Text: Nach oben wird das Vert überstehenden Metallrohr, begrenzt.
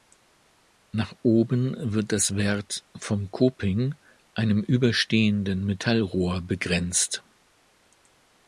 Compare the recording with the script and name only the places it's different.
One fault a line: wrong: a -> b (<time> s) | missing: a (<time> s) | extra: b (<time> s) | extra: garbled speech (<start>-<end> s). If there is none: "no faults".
extra: vom Coping einem (3.0 s)